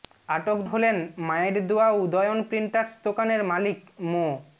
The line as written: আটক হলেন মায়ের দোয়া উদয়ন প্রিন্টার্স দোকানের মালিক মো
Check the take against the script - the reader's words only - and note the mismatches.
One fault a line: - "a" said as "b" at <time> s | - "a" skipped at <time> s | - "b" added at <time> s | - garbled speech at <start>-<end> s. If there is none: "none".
none